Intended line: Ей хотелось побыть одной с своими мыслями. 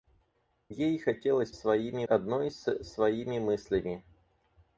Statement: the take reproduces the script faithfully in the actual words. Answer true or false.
false